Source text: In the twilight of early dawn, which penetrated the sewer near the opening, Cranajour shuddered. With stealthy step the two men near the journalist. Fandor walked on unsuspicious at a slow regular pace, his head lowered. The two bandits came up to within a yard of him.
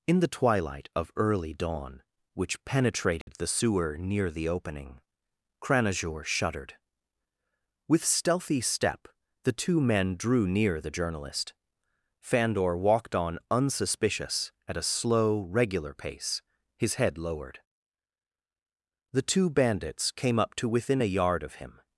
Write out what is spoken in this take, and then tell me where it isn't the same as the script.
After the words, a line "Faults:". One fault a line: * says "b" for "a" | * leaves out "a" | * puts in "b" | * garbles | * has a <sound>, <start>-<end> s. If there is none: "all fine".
In the twilight of early dawn, which penetrated the sewer near the opening, Cranajour shuddered. With stealthy step the two men drew near the journalist. Fandor walked on unsuspicious at a slow regular pace, his head lowered. The two bandits came up to within a yard of him.
Faults:
* has a dropout, 3.2-3.3 s
* puts in "drew"